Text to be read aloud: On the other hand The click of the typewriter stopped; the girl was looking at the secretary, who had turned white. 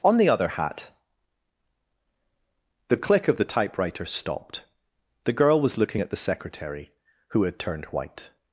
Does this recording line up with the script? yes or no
no